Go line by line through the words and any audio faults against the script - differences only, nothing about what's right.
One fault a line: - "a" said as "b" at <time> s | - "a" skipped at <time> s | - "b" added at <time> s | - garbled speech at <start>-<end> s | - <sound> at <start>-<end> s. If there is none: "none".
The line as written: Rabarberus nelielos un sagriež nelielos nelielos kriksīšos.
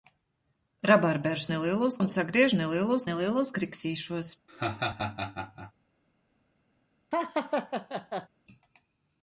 - laugh at 4.5-5.7 s
- laugh at 7.1-8.3 s